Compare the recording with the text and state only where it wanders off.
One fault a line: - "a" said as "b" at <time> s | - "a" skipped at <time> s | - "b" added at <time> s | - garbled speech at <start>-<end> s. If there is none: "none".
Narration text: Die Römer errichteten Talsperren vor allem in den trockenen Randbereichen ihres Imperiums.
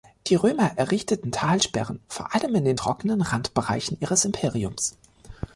none